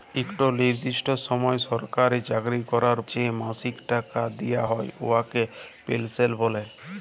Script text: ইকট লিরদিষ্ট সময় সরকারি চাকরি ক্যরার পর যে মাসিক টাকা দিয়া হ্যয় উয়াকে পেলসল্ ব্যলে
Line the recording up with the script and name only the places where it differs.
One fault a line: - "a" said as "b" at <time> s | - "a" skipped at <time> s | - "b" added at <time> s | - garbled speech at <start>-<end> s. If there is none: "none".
- "পর" skipped at 3.0 s